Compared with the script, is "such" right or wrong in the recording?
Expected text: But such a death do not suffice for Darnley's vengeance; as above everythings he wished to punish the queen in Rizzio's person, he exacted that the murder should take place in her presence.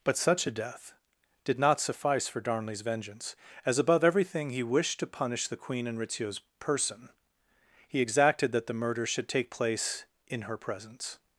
right